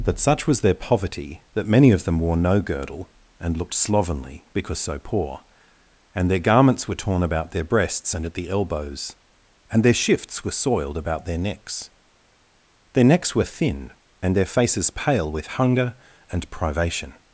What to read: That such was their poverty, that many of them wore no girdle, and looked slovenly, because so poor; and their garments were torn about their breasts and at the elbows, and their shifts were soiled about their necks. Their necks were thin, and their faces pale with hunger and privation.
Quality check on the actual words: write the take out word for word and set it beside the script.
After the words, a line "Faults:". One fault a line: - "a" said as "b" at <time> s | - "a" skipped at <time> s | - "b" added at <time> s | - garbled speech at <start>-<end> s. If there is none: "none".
That such was their poverty, that many of them wore no girdle, and looked slovenly, because so poor; and their garments were torn about their breasts and at the elbows, and their shifts were soiled about their necks. Their necks were thin, and their faces pale with hunger and privation.
Faults:
none